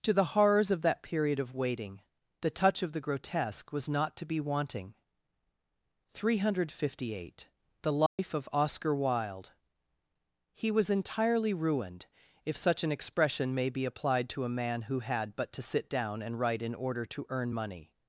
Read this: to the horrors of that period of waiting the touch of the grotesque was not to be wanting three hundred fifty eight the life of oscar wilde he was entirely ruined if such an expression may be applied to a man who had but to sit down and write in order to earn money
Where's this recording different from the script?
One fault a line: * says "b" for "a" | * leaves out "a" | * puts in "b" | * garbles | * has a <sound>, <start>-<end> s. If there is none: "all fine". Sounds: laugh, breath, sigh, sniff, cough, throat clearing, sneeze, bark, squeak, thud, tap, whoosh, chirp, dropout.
* has a dropout, 8.1-8.2 s